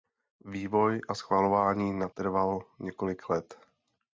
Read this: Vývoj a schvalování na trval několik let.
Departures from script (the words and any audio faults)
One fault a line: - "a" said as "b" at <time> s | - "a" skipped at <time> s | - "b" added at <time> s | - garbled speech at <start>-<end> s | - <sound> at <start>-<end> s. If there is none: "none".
none